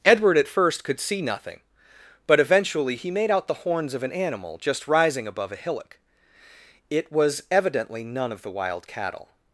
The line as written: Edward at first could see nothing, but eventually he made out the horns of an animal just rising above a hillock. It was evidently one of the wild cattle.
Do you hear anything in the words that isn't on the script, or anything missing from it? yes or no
yes